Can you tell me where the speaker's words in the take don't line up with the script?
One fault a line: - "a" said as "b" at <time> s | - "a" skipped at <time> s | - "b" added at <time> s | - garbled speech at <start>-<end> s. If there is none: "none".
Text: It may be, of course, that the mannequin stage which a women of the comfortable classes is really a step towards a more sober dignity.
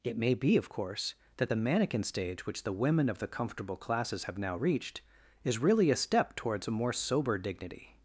- "a" said as "the" at 2.6 s
- "have now reached" added at 4.2 s